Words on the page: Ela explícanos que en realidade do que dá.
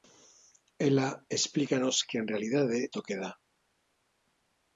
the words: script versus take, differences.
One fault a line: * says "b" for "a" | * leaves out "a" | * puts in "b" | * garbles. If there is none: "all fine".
all fine